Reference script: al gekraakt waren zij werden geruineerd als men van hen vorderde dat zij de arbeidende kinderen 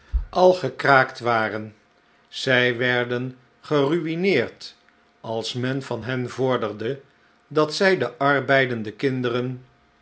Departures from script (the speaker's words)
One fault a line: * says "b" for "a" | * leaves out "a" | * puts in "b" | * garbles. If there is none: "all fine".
all fine